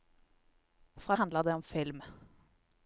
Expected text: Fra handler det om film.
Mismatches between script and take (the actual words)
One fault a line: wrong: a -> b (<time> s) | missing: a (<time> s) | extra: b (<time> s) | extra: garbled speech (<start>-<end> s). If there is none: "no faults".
no faults